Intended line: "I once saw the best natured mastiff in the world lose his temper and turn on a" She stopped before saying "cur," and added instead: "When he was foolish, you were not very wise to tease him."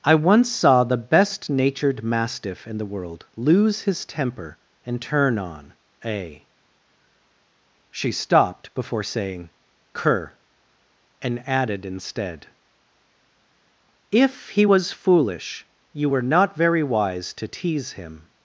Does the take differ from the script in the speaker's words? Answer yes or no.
yes